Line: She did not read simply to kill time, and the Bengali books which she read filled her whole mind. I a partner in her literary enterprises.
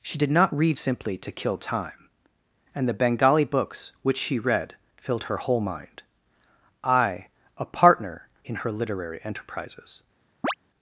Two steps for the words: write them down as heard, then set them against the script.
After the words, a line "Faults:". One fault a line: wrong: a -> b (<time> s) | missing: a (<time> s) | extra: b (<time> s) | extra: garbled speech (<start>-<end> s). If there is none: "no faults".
She did not read simply to kill time, and the Bengali books which she read filled her whole mind. I a partner in her literary enterprises.
Faults:
no faults